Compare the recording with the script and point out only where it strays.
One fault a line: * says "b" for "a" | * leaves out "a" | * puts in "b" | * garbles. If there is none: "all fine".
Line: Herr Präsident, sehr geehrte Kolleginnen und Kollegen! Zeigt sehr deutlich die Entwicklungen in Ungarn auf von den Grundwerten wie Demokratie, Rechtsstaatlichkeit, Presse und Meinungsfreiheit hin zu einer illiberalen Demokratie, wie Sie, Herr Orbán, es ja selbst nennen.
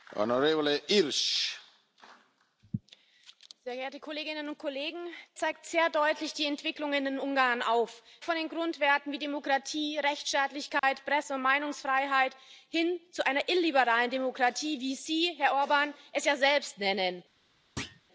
all fine